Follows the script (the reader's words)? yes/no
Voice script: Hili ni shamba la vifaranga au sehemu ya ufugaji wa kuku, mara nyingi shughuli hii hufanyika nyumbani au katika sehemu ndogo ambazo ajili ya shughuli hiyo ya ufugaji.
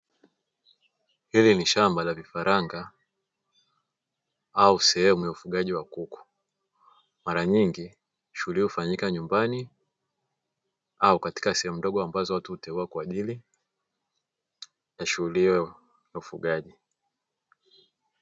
no